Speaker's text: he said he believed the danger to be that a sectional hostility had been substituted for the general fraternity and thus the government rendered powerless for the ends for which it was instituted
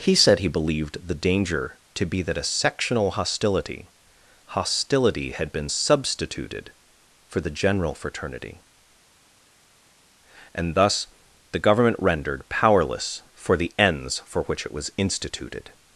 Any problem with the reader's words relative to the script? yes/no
yes